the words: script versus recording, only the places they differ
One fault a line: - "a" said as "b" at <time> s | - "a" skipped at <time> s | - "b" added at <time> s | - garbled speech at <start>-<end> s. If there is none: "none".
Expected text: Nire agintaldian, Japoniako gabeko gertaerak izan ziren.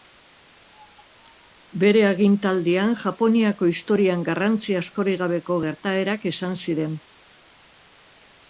- "Nire" said as "Bere" at 1.8 s
- "historian garrantzi askorik" added at 3.7 s